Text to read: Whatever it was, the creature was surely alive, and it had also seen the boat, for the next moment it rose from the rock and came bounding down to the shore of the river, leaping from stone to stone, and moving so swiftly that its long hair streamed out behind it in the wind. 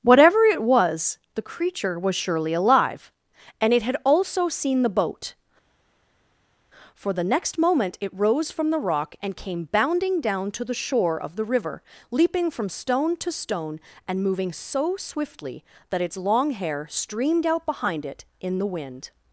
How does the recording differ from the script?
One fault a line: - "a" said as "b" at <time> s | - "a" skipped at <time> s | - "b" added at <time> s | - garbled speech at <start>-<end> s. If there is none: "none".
none